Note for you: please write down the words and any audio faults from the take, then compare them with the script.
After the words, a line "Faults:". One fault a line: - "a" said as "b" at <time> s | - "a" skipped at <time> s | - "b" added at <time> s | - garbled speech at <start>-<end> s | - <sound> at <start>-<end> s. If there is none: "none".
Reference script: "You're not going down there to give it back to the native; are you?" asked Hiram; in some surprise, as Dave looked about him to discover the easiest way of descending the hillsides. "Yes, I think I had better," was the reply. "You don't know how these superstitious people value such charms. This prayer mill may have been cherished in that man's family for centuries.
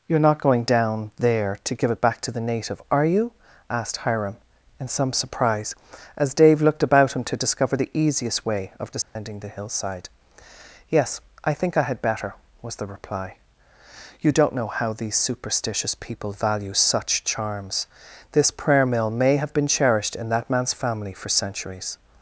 "You're not going down there to give it back to the native; are you?" asked Hiram; in some surprise, as Dave looked about him to discover the easiest way of descending the hillside. "Yes, I think I had better," was the reply. "You don't know how these superstitious people value such charms. This prayer mill may have been cherished in that man's family for centuries.
Faults:
- dropout at 9.0-9.2 s
- "hillsides" said as "hillside" at 9.5 s